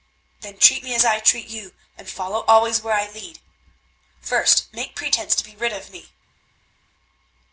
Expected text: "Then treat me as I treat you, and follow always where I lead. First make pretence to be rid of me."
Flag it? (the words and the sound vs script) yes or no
no